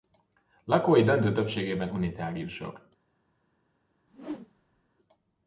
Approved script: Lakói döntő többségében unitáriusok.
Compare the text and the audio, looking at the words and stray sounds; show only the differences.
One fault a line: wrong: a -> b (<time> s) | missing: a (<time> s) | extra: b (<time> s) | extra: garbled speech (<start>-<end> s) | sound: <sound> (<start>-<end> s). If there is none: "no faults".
sound: whoosh (4.1-4.9 s)